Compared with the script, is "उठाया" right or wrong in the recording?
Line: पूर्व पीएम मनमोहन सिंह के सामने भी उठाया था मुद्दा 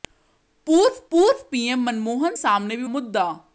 wrong